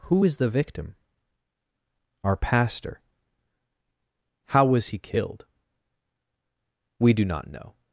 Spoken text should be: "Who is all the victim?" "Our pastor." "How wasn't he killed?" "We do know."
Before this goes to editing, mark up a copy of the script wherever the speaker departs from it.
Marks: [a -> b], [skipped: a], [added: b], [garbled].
"Who is [skipped: all] the victim?" "Our pastor." "How [wasn't -> was] he killed?" "We do [added: not] know."